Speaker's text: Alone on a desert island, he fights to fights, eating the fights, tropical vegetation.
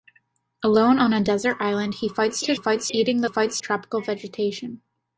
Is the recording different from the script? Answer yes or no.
no